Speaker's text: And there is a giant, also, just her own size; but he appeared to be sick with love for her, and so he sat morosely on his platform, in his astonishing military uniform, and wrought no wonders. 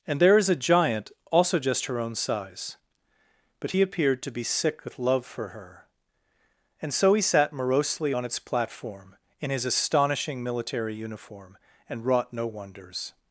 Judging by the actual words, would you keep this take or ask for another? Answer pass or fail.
fail